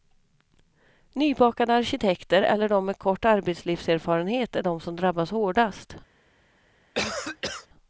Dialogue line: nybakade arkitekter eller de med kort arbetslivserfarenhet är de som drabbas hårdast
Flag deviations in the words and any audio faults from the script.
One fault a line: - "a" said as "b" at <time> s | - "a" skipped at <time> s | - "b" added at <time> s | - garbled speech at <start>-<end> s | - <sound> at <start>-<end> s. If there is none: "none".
- cough at 6.9-7.7 s